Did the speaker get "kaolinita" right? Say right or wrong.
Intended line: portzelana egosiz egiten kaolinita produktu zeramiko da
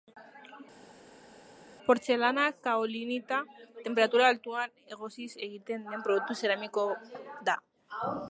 wrong